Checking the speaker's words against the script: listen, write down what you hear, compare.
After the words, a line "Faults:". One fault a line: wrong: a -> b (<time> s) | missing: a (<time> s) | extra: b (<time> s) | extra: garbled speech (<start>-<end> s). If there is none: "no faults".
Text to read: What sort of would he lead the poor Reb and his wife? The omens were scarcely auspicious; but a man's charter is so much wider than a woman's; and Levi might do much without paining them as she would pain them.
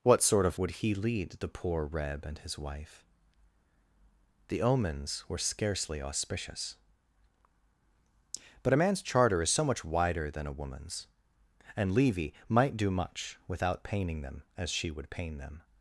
What sort of would he lead the poor Reb and his wife? The omens were scarcely auspicious; but a man's charter is so much wider than a woman's; and Levi might do much without paining them as she would pain them.
Faults:
no faults